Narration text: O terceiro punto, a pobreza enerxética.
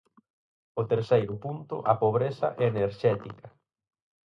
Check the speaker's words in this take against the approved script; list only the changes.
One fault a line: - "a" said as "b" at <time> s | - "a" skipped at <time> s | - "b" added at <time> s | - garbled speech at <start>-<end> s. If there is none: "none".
none